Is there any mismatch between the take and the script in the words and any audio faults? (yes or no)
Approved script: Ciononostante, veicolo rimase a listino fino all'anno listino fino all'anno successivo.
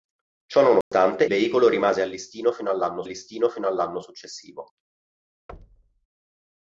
yes